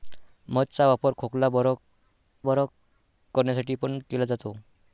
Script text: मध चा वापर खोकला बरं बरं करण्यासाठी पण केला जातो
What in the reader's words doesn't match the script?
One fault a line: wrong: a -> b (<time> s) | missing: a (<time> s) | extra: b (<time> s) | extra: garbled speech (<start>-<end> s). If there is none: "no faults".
no faults